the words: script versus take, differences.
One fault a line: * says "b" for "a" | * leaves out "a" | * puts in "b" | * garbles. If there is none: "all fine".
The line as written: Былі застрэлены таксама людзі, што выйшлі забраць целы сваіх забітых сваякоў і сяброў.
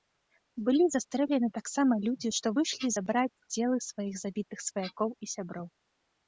all fine